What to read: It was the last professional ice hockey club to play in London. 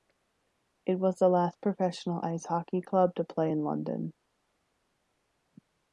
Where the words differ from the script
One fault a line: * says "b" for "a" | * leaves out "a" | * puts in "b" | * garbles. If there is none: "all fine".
all fine